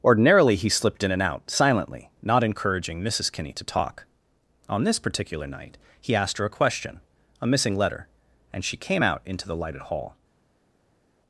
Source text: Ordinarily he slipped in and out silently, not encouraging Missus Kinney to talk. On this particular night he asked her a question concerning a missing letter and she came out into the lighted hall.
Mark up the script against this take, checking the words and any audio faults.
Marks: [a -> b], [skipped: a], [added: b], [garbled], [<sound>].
Ordinarily he slipped in and out silently, not encouraging Missus Kinney to talk. On this particular night he asked her a question [skipped: concerning] a missing letter and she came out into the lighted hall.